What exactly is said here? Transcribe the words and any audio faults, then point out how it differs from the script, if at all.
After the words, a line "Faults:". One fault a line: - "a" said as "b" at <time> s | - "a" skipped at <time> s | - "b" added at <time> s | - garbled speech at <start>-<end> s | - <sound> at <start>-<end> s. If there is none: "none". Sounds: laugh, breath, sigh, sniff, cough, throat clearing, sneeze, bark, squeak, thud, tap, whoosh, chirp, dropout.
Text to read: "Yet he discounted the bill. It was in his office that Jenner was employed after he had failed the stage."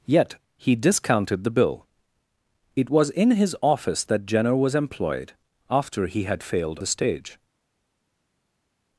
"Yet he discounted the bill. It was in his office that Jenner was employed after he had failed the stage."
Faults:
none